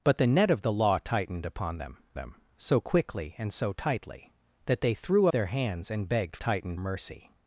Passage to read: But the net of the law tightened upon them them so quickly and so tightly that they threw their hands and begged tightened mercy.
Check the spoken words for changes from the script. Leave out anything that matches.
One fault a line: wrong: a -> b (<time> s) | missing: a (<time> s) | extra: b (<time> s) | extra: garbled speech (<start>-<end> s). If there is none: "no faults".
no faults